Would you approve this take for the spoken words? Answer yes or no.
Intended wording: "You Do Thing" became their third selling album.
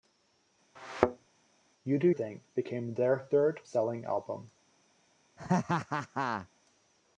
yes